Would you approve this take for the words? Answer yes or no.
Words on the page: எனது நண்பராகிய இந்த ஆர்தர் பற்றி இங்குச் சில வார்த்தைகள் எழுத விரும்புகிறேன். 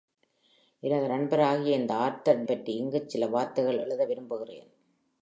yes